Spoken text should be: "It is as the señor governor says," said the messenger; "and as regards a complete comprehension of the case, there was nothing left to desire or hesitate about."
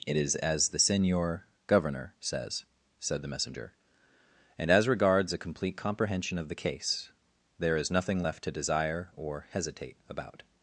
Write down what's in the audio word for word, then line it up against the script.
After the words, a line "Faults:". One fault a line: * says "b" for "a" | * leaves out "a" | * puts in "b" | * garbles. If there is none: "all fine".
"It is as the señor governor says," said the messenger; "and as regards a complete comprehension of the case, there is nothing left to desire or hesitate about."
Faults:
* says "is" for "was"